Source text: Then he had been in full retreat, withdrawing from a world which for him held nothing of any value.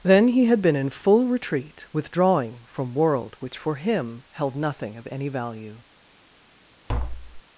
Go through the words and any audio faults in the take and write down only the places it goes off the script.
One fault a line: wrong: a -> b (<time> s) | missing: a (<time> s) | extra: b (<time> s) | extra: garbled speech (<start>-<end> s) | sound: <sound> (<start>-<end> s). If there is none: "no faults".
missing: a (3.0 s)
sound: tap (6.9-7.4 s)